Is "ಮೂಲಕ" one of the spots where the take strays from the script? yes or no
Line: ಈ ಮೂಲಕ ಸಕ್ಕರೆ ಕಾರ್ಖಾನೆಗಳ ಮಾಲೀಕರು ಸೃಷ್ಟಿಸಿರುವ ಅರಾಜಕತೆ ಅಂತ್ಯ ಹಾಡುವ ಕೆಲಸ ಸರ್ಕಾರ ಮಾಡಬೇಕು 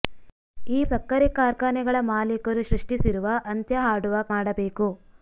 yes